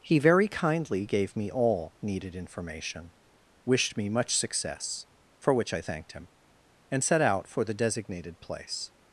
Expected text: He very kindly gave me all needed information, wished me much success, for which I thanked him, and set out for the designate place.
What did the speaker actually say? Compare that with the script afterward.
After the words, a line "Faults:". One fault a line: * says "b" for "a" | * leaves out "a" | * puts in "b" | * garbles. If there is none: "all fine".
He very kindly gave me all needed information, wished me much success, for which I thanked him, and set out for the designated place.
Faults:
* says "designated" for "designate"